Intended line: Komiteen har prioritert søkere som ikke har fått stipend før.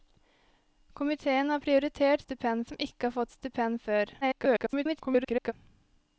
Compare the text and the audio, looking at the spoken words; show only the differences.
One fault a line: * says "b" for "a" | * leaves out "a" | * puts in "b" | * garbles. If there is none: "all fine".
* says "stipend" for "søkere"
* garbles